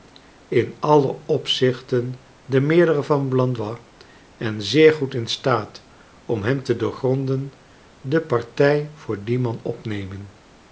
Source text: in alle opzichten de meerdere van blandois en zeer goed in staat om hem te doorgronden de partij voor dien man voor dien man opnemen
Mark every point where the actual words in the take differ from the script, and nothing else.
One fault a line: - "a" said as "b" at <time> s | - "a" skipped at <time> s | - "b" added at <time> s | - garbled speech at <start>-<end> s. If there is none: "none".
- "voor dien man" skipped at 9.6 s